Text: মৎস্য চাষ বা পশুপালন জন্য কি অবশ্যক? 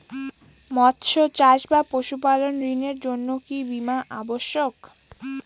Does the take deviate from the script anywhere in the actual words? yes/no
yes